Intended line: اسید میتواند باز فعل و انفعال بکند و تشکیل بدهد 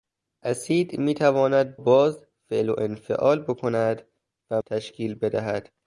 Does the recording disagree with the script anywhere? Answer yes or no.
no